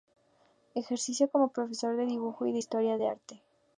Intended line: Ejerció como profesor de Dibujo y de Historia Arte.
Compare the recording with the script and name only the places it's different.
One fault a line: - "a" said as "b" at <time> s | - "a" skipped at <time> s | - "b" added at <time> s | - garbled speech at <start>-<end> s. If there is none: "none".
- "del" added at 3.0 s